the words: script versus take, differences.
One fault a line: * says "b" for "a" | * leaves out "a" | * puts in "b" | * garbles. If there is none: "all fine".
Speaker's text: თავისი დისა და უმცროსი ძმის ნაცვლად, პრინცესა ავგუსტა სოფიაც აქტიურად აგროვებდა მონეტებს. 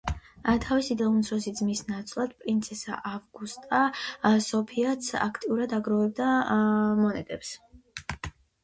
* leaves out "დისა"